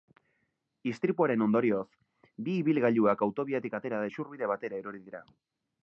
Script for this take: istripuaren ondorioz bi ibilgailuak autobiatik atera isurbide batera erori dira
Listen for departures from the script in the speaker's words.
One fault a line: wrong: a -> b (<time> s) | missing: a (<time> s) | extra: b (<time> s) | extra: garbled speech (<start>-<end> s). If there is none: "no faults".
no faults